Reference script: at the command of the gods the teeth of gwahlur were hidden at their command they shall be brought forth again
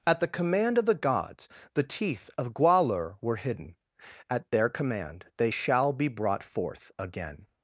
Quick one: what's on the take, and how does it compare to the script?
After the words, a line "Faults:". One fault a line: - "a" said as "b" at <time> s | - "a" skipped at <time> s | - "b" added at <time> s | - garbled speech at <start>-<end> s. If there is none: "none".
at the command of the gods the teeth of gwahlur were hidden at their command they shall be brought forth again
Faults:
none